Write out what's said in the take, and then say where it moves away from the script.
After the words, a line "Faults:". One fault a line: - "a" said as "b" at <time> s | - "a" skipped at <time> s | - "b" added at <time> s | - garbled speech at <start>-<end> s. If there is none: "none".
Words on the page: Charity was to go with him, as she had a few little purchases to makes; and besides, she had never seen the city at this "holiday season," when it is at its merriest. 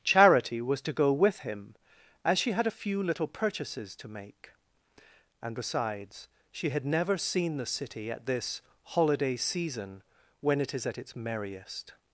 Charity was to go with him, as she had a few little purchases to make; and besides, she had never seen the city at this "holiday season," when it is at its merriest.
Faults:
- "makes" said as "make" at 4.1 s